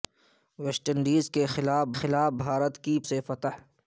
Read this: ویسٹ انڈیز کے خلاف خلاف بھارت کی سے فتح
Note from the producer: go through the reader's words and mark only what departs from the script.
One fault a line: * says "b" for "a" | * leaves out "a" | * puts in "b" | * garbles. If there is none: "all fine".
all fine